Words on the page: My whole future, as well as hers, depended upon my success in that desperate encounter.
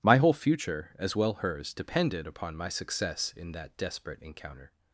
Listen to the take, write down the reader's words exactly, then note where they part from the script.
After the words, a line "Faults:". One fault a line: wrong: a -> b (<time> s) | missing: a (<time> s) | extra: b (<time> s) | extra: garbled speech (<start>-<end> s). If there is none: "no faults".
My whole future, as well hers, depended upon my success in that desperate encounter.
Faults:
missing: as (1.3 s)